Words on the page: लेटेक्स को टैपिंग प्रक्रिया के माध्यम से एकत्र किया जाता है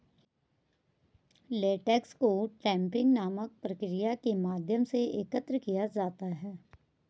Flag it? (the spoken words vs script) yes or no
yes